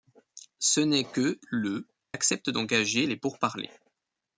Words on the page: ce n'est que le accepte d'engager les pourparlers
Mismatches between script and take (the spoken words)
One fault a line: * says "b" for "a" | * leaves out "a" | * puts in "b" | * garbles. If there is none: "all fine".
all fine